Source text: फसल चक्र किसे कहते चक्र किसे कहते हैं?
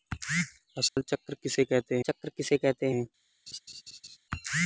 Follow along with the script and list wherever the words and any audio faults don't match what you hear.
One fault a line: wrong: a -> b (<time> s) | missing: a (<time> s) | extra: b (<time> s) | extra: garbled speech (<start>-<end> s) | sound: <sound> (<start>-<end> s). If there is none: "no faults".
sound: dropout (0.9-1.0 s)
sound: laugh (3.5-4.2 s)